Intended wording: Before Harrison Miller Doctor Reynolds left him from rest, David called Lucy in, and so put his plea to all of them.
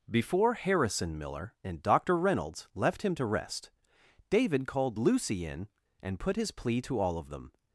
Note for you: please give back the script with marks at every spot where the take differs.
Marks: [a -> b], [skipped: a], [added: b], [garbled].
Before Harrison Miller [added: and] Doctor Reynolds left him [from -> to] rest, David called Lucy in, and [skipped: so] put his plea to all of them.